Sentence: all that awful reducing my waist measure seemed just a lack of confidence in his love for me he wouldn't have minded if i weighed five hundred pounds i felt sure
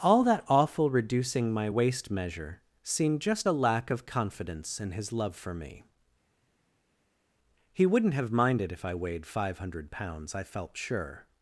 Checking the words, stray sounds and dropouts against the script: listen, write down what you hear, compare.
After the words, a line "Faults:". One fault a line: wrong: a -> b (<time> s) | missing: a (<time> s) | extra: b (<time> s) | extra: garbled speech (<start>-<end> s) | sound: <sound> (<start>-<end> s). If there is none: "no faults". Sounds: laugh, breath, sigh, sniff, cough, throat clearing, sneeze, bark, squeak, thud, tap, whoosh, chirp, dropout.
all that awful reducing my waist measure seemed just a lack of confidence in his love for me he wouldn't have minded if i weighed five hundred pounds i felt sure
Faults:
no faults